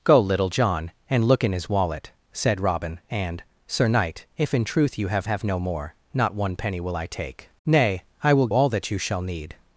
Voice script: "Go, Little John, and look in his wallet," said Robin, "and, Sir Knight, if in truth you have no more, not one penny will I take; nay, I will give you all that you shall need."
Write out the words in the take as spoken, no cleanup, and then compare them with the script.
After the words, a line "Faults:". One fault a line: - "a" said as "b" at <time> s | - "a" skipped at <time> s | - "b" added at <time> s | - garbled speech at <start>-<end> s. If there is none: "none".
"Go, Little John, and look in his wallet," said Robin, "and, Sir Knight, if in truth you have have no more, not one penny will I take; nay, I will all that you shall need."
Faults:
- "have" added at 5.3 s
- "give you" skipped at 8.5 s